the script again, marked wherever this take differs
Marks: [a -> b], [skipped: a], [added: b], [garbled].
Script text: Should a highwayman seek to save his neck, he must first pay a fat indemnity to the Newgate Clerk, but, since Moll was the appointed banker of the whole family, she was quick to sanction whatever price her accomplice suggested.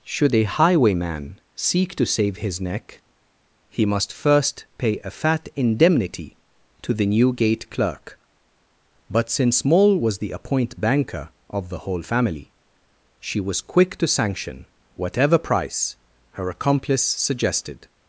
Should a highwayman seek to save his neck, he must first pay a fat indemnity to the Newgate Clerk, but, since Moll was the [appointed -> appoint] banker of the whole family, she was quick to sanction whatever price her accomplice suggested.